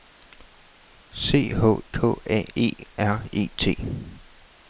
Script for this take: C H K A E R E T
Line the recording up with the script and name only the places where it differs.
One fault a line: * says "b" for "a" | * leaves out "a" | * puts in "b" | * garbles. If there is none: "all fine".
all fine